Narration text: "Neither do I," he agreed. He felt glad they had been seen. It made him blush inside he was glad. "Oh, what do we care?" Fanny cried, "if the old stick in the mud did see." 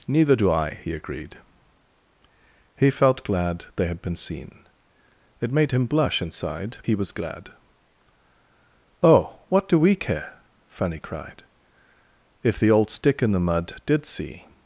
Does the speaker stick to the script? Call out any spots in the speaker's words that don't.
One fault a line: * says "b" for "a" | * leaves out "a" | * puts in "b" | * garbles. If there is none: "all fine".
all fine